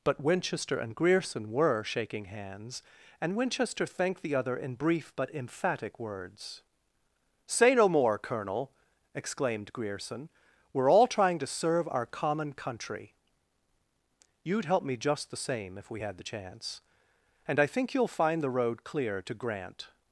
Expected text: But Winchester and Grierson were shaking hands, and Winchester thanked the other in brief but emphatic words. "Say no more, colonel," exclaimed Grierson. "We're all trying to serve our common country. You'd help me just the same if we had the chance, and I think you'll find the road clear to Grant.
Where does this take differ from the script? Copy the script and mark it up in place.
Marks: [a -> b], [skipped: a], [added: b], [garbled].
But Winchester and Grierson were shaking hands, and Winchester thanked the other in brief but emphatic words. "Say no more, colonel," exclaimed Grierson. "We're all trying to serve our common country. You'd help me just the same if we had the chance, and I think you'll find the road clear to Grant.